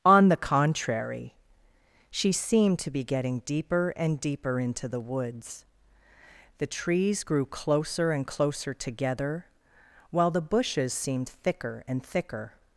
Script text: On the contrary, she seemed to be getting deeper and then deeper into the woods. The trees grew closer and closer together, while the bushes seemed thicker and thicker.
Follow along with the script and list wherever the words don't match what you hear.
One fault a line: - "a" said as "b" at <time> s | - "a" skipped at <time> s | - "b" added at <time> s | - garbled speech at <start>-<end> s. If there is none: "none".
- "then" skipped at 4.2 s